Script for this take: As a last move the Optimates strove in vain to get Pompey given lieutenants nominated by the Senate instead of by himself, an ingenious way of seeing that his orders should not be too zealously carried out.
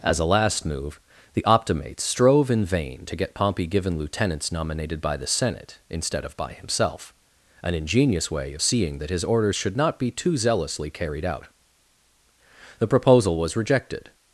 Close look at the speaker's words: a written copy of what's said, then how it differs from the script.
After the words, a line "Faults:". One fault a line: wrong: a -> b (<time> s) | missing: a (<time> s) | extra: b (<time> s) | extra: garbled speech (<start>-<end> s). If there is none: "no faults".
As a last move the Optimates strove in vain to get Pompey given lieutenants nominated by the Senate instead of by himself, an ingenious way of seeing that his orders should not be too zealously carried out. The proposal was rejected
Faults:
extra: The proposal was rejected (12.8 s)